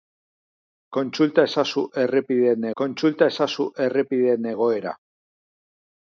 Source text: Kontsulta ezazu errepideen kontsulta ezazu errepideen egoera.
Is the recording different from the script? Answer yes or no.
no